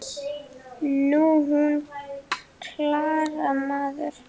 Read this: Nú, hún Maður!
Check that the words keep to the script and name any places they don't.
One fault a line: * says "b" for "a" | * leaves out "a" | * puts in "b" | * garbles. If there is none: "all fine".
* puts in "Klara"